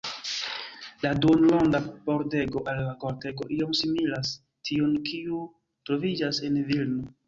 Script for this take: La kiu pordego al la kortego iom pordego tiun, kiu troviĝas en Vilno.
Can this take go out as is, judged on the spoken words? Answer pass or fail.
fail